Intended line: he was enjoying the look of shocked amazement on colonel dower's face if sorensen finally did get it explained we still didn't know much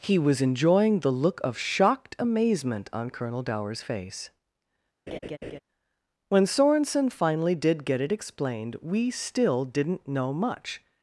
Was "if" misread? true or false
true